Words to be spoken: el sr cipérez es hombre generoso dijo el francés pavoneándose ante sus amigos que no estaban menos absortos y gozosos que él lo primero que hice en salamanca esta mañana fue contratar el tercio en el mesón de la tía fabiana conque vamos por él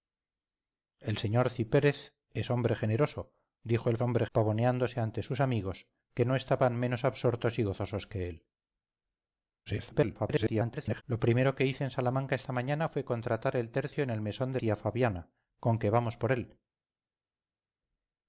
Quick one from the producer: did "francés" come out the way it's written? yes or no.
no